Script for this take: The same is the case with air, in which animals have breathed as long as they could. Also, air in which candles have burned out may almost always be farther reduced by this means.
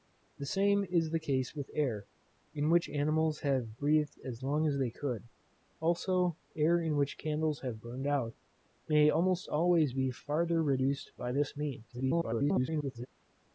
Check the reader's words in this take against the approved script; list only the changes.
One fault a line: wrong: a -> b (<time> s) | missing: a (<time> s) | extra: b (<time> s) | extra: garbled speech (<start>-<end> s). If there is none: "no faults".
extra: garbled speech (11.9-13.1 s)